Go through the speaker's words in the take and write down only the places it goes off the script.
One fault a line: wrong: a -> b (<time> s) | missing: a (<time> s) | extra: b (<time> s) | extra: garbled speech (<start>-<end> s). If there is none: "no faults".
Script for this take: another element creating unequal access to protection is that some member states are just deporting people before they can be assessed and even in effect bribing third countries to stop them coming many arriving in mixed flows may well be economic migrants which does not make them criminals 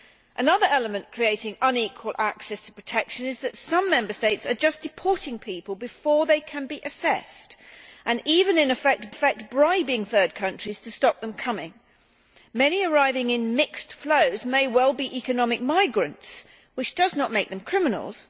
extra: effect (9.1 s)